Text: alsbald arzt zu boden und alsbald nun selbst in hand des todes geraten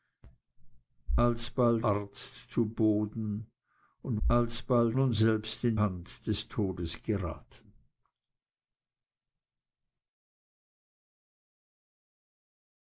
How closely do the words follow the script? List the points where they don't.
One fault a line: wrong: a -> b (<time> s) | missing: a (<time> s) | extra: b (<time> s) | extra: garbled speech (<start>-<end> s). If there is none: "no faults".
no faults